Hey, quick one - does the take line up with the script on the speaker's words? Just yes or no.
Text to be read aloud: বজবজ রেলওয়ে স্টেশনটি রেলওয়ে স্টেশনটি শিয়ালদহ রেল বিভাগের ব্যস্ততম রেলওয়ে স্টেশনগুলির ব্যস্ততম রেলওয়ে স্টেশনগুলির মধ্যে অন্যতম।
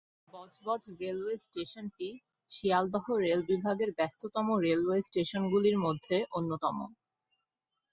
no